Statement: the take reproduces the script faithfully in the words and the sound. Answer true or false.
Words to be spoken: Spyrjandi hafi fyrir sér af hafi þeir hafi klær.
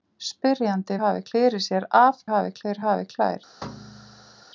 false